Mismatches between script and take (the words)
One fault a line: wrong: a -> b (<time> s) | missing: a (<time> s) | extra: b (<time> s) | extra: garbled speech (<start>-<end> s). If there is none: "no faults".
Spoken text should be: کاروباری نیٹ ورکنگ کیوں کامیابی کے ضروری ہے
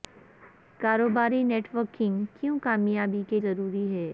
no faults